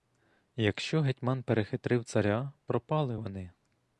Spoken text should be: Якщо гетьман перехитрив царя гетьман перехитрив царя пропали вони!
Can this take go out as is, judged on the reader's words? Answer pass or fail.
fail